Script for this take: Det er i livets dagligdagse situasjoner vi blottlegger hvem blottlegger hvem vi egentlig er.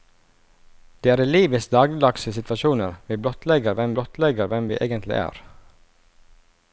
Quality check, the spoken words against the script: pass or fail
pass